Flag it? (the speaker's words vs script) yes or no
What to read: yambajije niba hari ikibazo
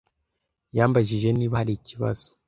no